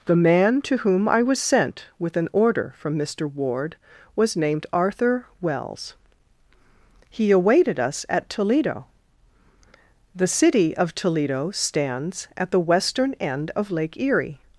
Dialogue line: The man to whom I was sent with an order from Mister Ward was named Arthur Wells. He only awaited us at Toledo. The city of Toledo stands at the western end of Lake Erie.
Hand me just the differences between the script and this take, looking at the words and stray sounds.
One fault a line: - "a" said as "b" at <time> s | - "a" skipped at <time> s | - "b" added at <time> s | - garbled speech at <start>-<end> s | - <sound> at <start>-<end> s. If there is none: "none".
- "only" skipped at 7.3 s